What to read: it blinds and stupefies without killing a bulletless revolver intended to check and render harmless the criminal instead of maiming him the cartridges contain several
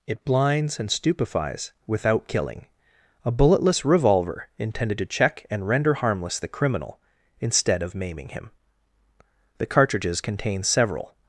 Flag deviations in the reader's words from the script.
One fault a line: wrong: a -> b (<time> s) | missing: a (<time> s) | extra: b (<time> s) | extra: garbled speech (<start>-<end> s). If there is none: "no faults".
no faults